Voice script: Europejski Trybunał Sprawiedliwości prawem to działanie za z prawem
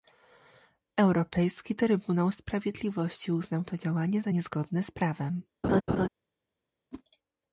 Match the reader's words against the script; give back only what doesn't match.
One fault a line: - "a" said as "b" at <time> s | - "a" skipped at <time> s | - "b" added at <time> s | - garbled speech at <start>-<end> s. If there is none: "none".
- "prawem" said as "uznał" at 3.3 s
- "niezgodne" added at 4.3 s